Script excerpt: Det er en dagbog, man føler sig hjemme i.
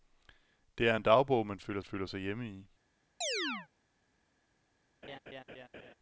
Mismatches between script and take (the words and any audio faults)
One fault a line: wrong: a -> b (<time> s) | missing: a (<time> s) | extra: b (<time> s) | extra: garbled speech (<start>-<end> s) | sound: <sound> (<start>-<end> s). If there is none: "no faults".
extra: føler (1.8 s)
sound: chirp (3.2-3.7 s)
sound: laugh (5.0-5.9 s)